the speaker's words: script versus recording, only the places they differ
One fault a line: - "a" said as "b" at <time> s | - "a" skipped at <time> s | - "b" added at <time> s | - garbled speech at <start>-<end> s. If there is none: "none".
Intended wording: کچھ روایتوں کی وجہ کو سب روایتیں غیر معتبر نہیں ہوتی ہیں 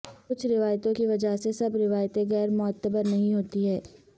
- "کو" said as "سے" at 1.4 s